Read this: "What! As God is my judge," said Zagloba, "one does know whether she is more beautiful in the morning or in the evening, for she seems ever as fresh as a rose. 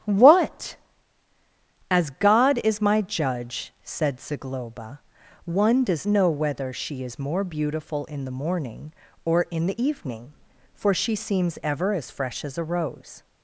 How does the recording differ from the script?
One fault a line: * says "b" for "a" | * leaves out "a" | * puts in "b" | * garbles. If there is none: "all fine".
all fine